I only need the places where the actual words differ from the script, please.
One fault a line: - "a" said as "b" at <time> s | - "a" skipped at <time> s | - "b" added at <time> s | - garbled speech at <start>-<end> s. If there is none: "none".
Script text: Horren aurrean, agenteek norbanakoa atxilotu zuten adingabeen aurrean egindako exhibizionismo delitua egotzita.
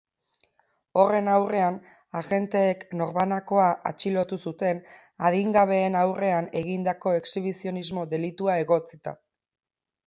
none